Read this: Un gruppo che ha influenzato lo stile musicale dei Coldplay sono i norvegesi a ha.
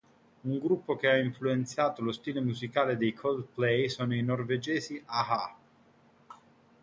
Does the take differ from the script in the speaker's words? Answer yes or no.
no